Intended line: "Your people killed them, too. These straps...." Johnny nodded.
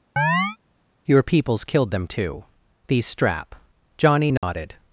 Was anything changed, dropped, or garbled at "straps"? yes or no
yes